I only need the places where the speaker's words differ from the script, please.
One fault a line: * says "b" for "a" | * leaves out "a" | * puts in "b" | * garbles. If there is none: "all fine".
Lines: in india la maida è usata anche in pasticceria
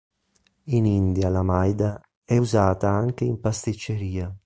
all fine